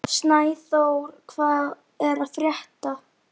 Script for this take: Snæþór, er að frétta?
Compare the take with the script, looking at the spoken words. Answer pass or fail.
fail